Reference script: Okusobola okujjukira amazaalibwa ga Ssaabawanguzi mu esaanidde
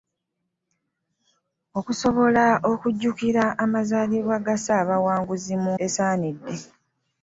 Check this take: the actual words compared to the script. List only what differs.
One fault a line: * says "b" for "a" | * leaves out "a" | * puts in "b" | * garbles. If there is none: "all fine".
all fine